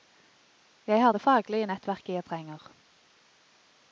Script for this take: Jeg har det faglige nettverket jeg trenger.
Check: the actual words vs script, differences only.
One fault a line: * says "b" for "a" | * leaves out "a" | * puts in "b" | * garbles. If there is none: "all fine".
all fine